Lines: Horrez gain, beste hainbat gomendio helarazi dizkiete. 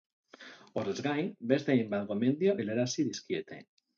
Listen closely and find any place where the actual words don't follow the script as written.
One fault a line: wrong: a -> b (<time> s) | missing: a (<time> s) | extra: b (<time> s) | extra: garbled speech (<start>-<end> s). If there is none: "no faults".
no faults